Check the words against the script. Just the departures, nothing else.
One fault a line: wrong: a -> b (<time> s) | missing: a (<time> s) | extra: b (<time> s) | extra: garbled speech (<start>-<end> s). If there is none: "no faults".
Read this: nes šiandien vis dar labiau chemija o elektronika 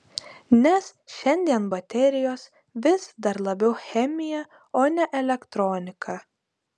extra: baterijos (1.7 s)
extra: ne (5.0 s)